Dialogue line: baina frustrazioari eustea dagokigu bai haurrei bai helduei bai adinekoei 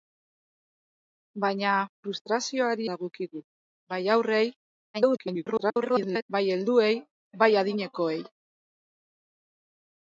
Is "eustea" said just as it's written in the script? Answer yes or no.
no